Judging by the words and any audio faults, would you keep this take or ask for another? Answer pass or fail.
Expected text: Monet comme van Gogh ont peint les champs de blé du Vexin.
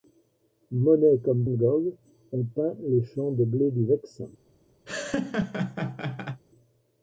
fail